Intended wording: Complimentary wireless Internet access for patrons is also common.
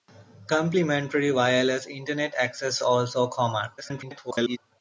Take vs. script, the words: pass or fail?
fail